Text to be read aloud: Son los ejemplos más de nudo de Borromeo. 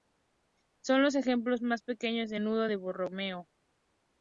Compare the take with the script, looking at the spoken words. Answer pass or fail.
fail